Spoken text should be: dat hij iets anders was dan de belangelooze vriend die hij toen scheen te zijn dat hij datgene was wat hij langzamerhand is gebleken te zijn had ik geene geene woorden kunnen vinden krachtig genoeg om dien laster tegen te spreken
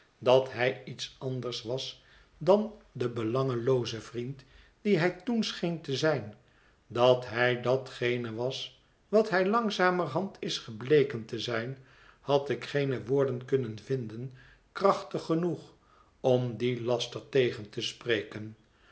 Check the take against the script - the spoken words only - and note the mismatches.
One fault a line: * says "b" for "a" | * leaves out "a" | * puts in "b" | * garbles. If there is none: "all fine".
* leaves out "geene"